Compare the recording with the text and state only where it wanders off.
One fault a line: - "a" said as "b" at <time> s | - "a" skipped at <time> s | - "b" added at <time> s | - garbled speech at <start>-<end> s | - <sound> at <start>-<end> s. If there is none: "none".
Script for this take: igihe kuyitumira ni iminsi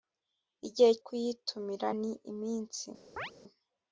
- chirp at 3.2-3.3 s